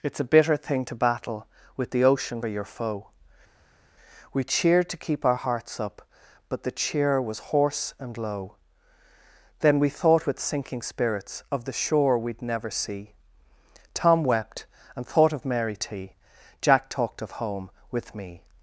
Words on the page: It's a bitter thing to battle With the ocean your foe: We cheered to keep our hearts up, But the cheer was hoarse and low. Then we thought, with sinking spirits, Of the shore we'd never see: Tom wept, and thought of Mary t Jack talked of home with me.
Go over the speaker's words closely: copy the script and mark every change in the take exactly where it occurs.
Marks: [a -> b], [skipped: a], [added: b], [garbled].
It's a bitter thing to battle With the ocean your foe: We cheered to keep our hearts up, But the cheer was hoarse and low. Then we thought, with sinking spirits, Of the shore we'd never see: Tom wept, and thought of Mary t Jack talked of home with me.